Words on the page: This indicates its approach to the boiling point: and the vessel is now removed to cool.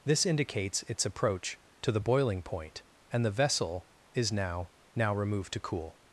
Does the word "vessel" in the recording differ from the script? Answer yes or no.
no